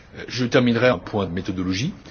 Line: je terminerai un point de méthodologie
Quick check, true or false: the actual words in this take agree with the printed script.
true